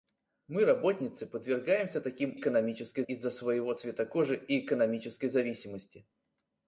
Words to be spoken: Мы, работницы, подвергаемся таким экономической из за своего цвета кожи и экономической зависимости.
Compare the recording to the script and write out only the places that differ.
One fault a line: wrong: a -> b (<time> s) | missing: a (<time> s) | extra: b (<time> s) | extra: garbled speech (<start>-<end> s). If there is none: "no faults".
no faults